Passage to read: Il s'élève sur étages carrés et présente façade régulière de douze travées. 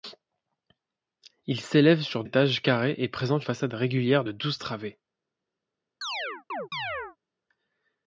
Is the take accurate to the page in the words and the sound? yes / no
no